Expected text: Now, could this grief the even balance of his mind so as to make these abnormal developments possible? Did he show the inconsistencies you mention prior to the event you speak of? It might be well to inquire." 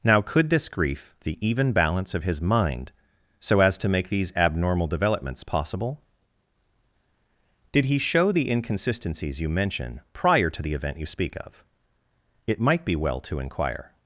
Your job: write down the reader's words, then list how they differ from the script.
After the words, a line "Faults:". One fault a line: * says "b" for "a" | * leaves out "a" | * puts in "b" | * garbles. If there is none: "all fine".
Now, could this grief the even balance of his mind so as to make these abnormal developments possible? Did he show the inconsistencies you mention prior to the event you speak of? It might be well to inquire."
Faults:
all fine